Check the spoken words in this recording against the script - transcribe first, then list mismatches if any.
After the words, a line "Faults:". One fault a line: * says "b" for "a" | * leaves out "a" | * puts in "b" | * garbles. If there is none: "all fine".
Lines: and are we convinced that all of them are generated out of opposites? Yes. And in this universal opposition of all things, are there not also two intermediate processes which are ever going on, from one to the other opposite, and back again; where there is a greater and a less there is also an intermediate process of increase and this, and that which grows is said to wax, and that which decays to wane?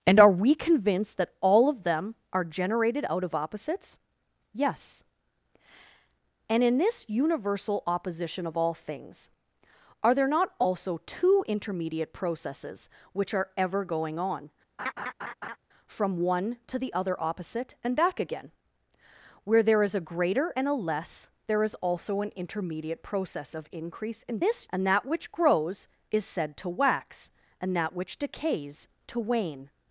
and are we convinced that all of them are generated out of opposites? Yes. And in this universal opposition of all things, are there not also two intermediate processes which are ever going on, from one to the other opposite, and back again; where there is a greater and a less there is also an intermediate process of increase and this, and that which grows is said to wax, and that which decays to wane?
Faults:
all fine